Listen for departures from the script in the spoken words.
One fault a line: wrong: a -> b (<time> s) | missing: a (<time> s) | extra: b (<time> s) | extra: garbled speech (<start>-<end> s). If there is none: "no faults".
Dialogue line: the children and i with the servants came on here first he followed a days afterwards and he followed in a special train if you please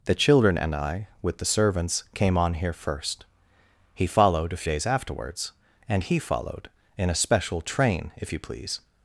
no faults